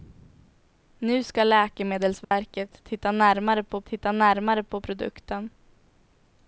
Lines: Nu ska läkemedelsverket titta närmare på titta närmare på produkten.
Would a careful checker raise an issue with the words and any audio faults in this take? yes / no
yes